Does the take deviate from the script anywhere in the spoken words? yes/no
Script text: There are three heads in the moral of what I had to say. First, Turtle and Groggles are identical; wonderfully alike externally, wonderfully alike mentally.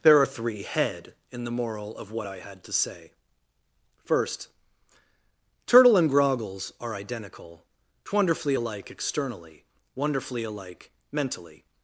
yes